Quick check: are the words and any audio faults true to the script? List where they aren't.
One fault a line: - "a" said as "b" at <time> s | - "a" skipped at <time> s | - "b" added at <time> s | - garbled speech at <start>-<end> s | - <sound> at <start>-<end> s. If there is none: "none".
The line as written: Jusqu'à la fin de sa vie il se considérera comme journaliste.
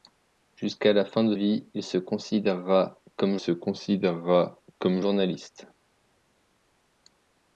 - "sa" skipped at 1.4 s
- "se considérera comme" added at 3.3 s